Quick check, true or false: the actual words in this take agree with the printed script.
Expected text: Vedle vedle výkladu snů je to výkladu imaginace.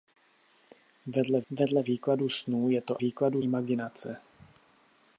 true